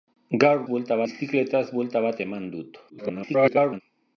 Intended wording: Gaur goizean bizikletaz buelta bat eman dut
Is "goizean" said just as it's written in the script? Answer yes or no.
no